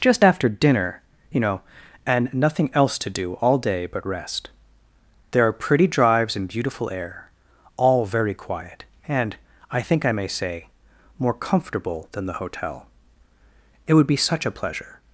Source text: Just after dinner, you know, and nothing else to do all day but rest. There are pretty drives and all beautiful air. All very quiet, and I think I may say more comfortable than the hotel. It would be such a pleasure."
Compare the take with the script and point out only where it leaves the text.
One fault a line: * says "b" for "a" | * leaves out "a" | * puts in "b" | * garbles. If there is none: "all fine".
* leaves out "all"